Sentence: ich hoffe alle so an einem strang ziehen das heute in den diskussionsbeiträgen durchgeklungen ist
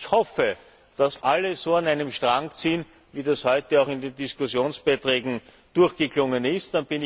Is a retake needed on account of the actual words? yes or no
yes